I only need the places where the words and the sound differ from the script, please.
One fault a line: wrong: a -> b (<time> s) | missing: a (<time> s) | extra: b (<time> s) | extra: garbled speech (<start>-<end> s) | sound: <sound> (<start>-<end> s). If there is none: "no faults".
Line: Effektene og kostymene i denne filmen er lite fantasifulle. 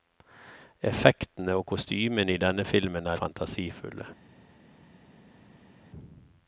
missing: lite (3.2 s)